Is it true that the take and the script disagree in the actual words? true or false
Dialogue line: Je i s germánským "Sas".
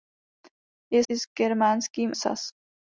false